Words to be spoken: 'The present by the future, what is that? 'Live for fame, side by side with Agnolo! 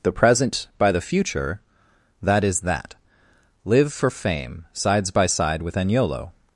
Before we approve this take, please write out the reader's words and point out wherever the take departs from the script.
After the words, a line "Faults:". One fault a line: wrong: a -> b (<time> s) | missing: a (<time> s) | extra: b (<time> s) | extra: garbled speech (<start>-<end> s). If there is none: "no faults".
'The present by the future, that is that? 'Live for fame, sides by side with Agnolo!
Faults:
wrong: what -> that (2.2 s)
wrong: side -> sides (4.7 s)